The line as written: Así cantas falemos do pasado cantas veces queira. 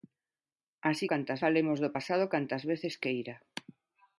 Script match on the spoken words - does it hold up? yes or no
yes